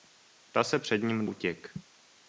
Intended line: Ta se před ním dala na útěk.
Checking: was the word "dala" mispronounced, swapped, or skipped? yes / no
yes